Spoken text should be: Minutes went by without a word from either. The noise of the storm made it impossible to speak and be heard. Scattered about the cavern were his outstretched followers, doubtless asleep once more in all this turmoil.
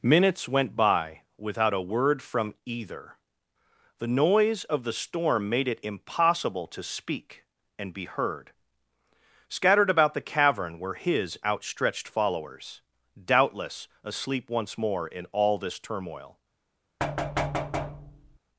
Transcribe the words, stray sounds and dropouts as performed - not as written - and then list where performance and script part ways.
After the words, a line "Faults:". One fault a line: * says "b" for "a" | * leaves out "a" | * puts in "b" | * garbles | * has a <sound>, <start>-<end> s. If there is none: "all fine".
Minutes went by without a word from either. The noise of the storm made it impossible to speak and be heard. Scattered about the cavern were his outstretched followers, doubtless asleep once more in all this turmoil.
Faults:
* has a thud, 17.0-18.4 s